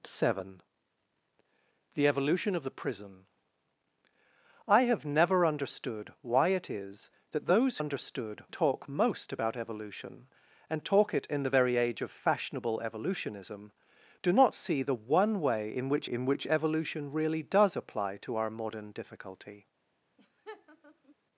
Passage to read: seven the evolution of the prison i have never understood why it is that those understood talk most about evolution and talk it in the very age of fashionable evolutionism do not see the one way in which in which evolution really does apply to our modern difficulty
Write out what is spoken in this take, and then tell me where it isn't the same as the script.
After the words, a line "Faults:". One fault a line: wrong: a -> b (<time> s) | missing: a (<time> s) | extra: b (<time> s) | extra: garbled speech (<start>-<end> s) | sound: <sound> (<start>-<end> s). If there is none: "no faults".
seven the evolution of the prison i have never understood why it is that those understood talk most about evolution and talk it in the very age of fashionable evolutionism do not see the one way in which in which evolution really does apply to our modern difficulty
Faults:
sound: laugh (20.2-21.2 s)